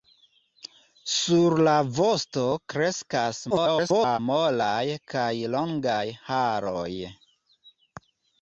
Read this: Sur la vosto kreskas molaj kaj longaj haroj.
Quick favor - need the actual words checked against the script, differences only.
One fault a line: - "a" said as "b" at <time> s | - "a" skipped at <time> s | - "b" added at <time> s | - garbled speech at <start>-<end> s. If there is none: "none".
- garbled speech at 3.5-4.2 s